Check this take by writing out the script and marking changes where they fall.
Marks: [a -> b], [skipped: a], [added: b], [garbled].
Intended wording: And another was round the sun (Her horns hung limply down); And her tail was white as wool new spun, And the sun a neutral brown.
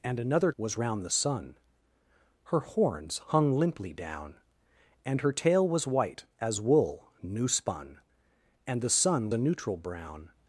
And another was round the sun (Her horns hung limply down); And her tail was white as wool new spun, And the sun a neutral brown.